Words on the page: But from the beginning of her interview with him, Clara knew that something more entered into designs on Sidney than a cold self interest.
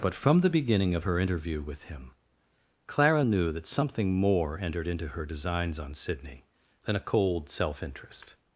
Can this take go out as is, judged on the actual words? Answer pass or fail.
fail